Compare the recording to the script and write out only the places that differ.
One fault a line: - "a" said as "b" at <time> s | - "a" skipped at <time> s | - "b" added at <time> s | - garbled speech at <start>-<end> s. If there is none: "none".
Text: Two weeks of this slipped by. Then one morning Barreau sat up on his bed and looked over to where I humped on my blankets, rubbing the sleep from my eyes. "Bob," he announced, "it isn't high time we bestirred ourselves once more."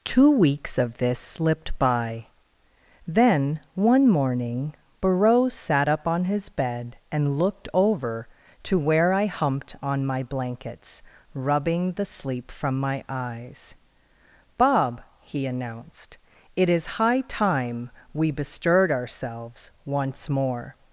- "isn't" said as "is" at 16.7 s